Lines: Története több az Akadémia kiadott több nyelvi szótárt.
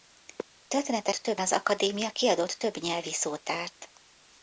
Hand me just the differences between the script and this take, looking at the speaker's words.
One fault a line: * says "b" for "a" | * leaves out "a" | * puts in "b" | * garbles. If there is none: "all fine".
all fine